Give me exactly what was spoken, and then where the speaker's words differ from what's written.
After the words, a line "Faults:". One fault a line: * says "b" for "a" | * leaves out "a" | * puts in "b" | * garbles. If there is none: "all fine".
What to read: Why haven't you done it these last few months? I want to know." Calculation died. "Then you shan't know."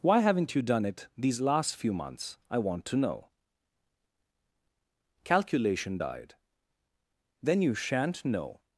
Why haven't you done it these last few months? I want to know." Calculation died. "Then you shan't know."
Faults:
all fine